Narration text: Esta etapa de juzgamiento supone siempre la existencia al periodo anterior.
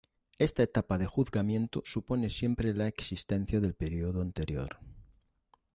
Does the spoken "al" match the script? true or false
false